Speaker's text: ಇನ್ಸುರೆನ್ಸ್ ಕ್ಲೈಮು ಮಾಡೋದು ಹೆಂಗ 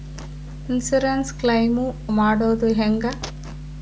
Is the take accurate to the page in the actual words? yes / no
yes